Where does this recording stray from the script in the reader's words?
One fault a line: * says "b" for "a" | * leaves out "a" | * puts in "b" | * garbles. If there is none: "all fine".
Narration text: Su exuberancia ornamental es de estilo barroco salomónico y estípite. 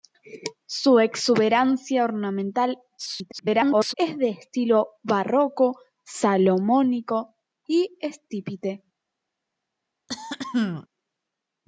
* garbles